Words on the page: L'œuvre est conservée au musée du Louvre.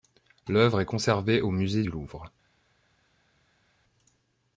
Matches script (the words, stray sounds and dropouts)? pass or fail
pass